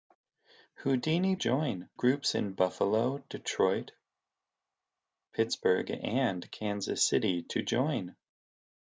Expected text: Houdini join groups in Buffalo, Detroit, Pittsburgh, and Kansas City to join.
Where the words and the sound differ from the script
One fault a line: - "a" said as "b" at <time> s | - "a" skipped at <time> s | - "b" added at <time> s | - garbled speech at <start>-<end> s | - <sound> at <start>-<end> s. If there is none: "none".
none